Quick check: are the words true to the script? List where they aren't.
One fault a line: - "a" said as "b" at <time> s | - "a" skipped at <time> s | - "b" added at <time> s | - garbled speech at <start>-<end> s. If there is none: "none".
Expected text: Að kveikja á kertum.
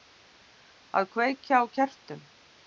none